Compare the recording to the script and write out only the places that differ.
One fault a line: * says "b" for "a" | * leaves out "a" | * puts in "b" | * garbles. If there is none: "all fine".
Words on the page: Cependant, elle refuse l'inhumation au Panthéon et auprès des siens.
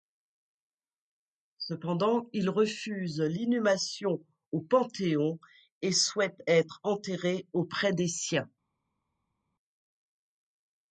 * says "il" for "elle"
* puts in "souhaite être enterré"